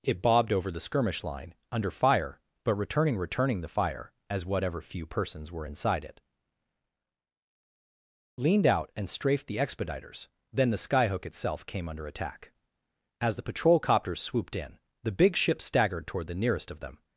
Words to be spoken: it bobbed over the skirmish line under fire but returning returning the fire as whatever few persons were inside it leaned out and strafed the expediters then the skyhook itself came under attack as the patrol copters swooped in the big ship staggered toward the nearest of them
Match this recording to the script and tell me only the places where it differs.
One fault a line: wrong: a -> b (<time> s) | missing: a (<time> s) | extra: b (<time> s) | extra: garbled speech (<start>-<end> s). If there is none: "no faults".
no faults